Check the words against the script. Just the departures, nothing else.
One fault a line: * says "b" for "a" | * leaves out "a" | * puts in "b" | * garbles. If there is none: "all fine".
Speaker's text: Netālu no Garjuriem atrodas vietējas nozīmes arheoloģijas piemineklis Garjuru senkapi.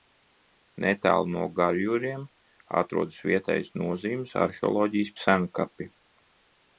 * leaves out "piemineklis Garjuru"